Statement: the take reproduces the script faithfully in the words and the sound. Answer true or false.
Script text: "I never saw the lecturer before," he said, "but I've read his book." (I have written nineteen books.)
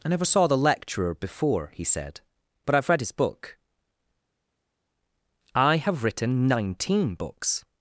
true